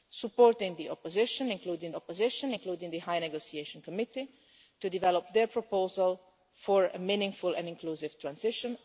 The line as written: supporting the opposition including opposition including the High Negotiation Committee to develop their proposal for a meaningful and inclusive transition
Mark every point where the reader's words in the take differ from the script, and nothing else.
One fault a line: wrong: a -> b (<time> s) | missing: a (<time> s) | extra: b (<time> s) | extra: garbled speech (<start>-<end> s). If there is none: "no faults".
no faults